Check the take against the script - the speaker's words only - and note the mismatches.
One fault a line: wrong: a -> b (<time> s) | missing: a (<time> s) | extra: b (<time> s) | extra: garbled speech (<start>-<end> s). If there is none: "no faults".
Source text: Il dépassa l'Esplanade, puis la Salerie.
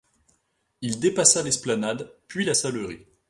no faults